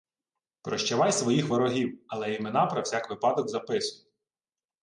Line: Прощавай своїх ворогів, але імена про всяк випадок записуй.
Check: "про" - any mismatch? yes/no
no